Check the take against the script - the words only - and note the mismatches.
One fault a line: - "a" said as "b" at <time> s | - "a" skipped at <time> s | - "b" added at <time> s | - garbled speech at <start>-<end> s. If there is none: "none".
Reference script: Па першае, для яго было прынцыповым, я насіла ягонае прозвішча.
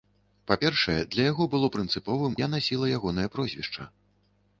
none